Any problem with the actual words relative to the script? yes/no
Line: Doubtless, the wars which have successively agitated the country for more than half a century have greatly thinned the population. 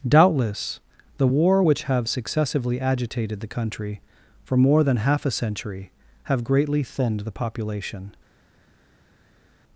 yes